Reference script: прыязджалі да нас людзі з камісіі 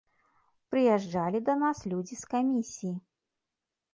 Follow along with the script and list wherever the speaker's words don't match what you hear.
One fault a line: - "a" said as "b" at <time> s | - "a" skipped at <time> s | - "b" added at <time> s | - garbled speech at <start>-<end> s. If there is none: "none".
none